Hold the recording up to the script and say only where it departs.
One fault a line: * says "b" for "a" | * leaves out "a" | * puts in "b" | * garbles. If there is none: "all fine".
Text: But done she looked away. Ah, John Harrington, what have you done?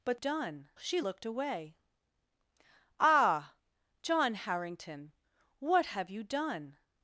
all fine